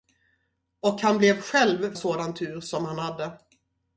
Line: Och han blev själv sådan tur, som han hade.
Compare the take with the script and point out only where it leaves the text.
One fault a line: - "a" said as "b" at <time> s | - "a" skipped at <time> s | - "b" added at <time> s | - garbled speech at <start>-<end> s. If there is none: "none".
none